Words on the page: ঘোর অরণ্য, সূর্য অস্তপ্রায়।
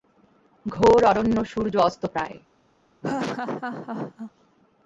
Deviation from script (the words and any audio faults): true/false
true